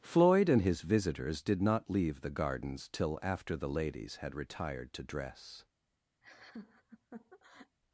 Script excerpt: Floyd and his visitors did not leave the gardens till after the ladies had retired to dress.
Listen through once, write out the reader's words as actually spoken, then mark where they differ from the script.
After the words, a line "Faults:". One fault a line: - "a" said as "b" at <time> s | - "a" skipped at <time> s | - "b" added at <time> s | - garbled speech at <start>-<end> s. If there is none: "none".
Floyd and his visitors did not leave the gardens till after the ladies had retired to dress.
Faults:
none